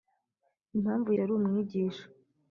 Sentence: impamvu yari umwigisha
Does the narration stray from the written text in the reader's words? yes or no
no